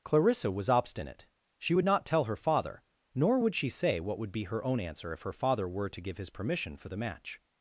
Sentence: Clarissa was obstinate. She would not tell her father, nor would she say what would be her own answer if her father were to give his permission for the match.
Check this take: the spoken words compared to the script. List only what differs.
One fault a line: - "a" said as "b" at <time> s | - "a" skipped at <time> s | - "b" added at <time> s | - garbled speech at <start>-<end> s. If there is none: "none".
none